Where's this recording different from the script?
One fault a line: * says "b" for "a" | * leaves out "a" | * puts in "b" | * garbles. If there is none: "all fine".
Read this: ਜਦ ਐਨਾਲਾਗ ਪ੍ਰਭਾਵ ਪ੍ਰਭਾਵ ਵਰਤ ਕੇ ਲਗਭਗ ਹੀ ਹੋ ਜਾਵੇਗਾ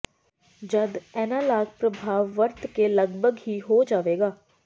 * leaves out "ਪ੍ਰਭਾਵ"